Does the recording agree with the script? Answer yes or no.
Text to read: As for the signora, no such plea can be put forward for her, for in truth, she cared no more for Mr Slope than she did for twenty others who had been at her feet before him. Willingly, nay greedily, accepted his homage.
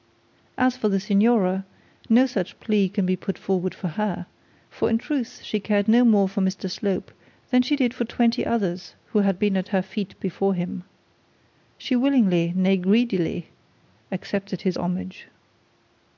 no